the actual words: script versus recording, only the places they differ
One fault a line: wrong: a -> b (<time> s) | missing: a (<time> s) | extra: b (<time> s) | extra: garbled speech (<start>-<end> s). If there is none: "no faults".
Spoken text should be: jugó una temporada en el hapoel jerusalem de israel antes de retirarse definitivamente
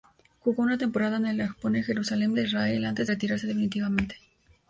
missing: de (3.1 s)